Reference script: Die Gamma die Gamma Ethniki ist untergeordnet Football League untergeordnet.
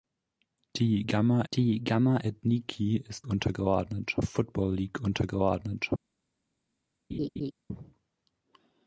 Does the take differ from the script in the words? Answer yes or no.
no